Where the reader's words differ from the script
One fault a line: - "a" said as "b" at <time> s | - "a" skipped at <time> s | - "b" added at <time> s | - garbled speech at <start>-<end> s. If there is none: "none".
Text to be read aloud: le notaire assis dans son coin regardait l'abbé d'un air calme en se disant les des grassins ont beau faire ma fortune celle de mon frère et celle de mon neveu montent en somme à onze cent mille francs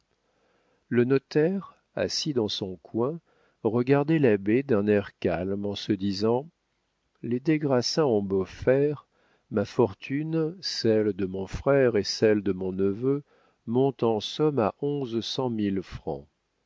none